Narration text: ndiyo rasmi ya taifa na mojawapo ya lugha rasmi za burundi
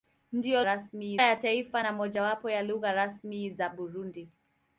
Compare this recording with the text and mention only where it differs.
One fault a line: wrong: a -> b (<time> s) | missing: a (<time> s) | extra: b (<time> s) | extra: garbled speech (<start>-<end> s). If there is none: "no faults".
no faults